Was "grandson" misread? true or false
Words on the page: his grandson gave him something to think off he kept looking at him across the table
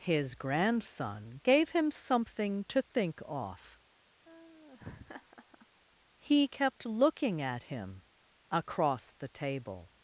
false